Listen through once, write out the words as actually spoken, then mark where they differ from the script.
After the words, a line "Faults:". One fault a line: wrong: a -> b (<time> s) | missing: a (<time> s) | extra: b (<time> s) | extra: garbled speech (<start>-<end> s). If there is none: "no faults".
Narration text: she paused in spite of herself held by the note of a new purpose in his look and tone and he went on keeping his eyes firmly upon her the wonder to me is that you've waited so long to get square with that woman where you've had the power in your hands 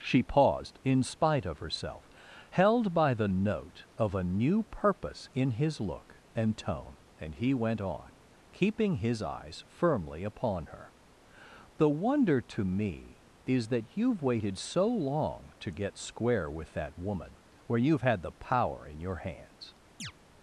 she paused in spite of herself held by the note of a new purpose in his look and tone and he went on keeping his eyes firmly upon her the wonder to me is that you've waited so long to get square with that woman where you've had the power in your hands
Faults:
no faults